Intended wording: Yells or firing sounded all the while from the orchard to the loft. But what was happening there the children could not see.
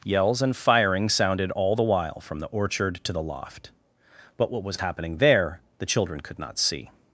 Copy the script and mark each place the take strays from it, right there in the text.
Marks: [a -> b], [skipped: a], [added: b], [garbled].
Yells [or -> and] firing sounded all the while from the orchard to the loft. But what was happening there the children could not see.